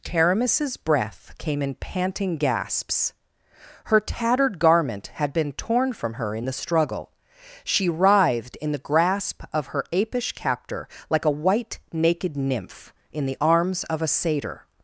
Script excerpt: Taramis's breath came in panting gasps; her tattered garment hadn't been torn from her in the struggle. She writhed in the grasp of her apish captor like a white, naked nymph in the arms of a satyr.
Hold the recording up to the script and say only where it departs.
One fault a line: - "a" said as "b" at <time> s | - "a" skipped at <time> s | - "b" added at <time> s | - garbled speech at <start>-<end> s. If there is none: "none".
- "hadn't" said as "had" at 5.1 s